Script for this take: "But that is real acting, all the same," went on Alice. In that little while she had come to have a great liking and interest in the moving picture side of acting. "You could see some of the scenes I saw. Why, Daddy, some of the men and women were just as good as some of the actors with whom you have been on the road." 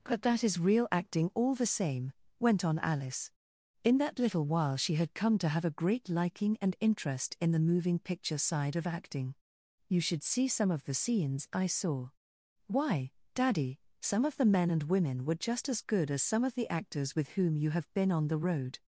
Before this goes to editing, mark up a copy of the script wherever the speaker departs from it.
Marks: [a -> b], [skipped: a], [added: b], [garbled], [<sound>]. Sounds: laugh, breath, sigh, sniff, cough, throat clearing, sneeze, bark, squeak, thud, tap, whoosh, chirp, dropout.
"But that is real acting, all the same," went on Alice. In that little while she had come to have a great liking and interest in the moving picture side of acting. "You [could -> should] see some of the scenes I saw. Why, Daddy, some of the men and women were just as good as some of the actors with whom you have been on the road."